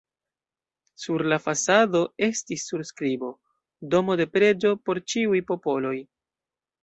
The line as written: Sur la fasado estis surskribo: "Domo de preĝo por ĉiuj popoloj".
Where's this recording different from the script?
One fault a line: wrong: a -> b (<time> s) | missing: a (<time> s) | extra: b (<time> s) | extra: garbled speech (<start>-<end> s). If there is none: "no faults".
no faults